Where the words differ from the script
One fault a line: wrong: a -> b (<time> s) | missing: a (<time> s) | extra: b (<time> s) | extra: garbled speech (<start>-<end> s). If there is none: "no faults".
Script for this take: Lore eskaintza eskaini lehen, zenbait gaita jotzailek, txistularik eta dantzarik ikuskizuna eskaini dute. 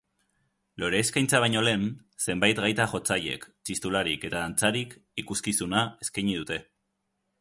wrong: eskaini -> baino (1.4 s)